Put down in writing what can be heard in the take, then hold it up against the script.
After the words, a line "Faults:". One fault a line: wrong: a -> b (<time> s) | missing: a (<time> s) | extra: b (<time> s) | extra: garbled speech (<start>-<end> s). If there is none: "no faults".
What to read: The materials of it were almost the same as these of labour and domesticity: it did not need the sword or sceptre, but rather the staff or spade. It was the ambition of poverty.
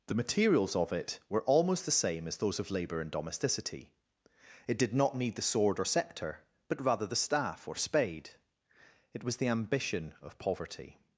The materials of it were almost the same as those of labour and domesticity: it did not need the sword or sceptre, but rather the staff or spade. It was the ambition of poverty.
Faults:
wrong: these -> those (2.4 s)